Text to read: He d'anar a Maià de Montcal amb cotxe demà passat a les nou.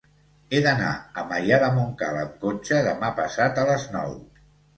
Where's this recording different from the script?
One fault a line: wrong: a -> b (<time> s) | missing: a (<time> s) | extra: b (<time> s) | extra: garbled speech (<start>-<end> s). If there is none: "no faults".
no faults